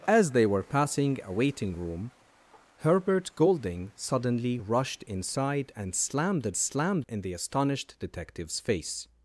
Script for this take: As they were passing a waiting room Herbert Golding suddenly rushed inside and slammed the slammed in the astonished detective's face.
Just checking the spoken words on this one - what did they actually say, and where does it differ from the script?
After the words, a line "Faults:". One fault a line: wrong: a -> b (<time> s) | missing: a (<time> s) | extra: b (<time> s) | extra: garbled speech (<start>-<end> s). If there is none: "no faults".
As they were passing a waiting room Herbert Golding suddenly rushed inside and slammed the slammed in the astonished detective's face.
Faults:
no faults